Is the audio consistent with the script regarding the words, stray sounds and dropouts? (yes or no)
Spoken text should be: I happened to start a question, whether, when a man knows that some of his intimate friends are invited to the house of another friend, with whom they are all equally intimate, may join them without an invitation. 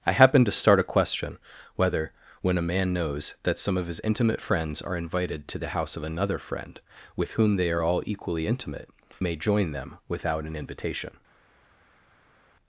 yes